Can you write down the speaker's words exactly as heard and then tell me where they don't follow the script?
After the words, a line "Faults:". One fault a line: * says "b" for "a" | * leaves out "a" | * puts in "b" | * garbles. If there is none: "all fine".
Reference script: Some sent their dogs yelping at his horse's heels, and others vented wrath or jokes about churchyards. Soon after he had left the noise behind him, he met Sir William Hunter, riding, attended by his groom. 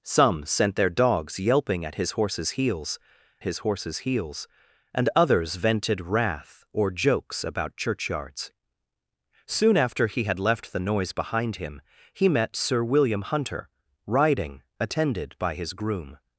Some sent their dogs yelping at his horse's heels his horse's heels, and others vented wrath or jokes about churchyards. Soon after he had left the noise behind him, he met Sir William Hunter, riding, attended by his groom.
Faults:
* puts in "his horse's heels"